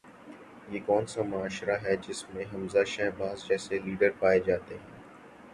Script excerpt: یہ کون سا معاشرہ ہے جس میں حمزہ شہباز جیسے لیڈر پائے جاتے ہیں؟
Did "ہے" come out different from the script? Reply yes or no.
no